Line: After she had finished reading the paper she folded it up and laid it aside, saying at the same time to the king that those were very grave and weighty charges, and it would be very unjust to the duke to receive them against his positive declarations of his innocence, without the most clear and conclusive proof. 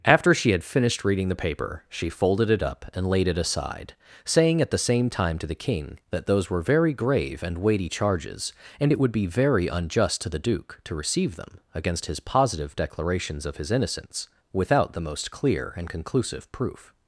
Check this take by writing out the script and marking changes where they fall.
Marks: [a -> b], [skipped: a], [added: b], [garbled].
After she had finished reading the paper she folded it up and laid it aside, saying at the same time to the king that those were very grave and weighty charges, and it would be very unjust to the duke to receive them against his positive declarations of his innocence, without the most clear and conclusive proof.